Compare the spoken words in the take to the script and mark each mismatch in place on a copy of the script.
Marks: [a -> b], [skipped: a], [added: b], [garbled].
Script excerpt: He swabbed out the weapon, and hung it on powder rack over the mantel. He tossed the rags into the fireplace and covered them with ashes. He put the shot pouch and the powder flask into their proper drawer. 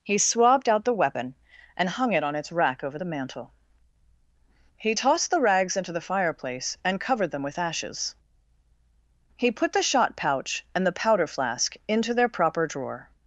He swabbed out the weapon, and hung it on [powder -> its] rack over the mantel. He tossed the rags into the fireplace and covered them with ashes. He put the shot pouch and the powder flask into their proper drawer.